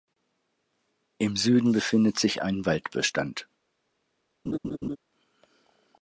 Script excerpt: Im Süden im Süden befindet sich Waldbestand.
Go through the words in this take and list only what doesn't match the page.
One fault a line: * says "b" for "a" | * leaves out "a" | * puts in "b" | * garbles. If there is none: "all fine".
* leaves out "im Süden"
* puts in "ein"